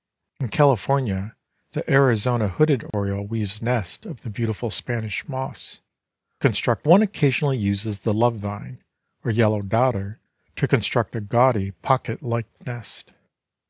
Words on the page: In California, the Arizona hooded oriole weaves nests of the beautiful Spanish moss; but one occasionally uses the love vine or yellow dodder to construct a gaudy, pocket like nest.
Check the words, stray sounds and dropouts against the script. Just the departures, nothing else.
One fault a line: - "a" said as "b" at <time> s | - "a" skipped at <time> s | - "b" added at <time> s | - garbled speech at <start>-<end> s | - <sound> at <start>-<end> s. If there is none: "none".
- dropout at 2.9-2.9 s
- "but" said as "construct" at 6.4 s